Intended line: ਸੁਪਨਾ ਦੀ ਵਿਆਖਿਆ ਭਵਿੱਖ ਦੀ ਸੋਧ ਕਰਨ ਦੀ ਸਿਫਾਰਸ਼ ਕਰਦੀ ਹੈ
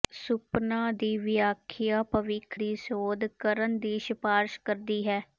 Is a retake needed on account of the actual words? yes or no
no